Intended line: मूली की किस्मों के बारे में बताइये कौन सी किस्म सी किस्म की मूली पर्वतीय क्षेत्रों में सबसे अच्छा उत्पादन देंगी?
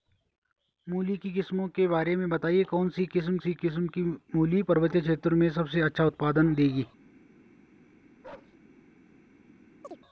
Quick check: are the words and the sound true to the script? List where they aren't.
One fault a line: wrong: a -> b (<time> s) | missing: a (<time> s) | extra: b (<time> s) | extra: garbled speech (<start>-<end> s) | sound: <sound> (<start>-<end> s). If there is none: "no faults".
sound: bark (8.2-8.6 s)
sound: chirp (9.8-10.0 s)